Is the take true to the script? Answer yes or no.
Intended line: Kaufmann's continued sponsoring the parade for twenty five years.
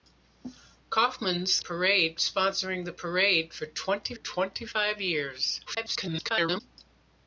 no